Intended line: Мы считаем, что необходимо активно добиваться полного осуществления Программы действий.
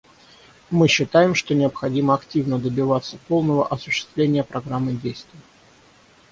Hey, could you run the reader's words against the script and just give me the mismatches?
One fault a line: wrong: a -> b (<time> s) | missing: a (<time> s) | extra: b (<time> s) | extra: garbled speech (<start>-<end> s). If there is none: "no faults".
no faults